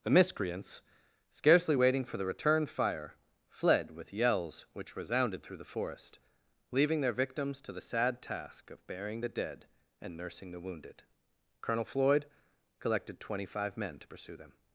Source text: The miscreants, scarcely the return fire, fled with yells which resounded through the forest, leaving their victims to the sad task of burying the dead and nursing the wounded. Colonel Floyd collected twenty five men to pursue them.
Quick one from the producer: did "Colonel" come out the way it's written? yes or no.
yes